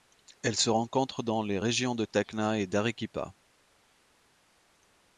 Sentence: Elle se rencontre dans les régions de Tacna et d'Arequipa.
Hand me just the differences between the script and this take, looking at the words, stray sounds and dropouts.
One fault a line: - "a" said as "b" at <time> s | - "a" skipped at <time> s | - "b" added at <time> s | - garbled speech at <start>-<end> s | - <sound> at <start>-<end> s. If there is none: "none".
none